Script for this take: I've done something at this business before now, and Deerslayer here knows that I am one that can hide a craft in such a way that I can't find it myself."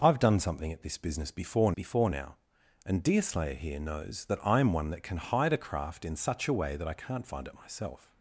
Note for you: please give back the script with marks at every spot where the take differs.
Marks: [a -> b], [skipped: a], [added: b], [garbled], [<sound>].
I've done something at this business before [added: before] now, and Deerslayer here knows that I am one that can hide a craft in such a way that I can't find it myself."